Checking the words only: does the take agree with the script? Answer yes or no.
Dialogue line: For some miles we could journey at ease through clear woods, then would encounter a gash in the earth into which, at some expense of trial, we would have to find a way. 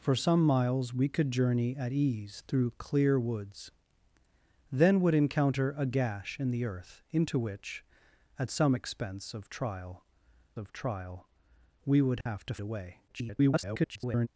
no